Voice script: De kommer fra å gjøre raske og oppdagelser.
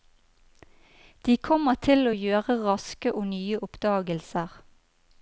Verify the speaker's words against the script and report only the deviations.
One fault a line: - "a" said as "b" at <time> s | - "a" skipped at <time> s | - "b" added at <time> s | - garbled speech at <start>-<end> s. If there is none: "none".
- "fra" said as "til" at 1.9 s
- "nye" added at 3.3 s